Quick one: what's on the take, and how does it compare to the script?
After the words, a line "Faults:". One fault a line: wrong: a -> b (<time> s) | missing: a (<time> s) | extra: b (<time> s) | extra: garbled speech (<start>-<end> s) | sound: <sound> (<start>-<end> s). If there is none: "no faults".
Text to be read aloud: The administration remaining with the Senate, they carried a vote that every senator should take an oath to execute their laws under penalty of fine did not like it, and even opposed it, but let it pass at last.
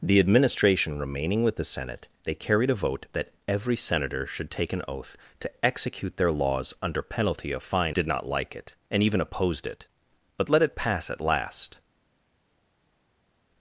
The administration remaining with the Senate, they carried a vote that every senator should take an oath to execute their laws under penalty of fine did not like it, and even opposed it, but let it pass at last.
Faults:
no faults